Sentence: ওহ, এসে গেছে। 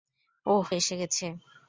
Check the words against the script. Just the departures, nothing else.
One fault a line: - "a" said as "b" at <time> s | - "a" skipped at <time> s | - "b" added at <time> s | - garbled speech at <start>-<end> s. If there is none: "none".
none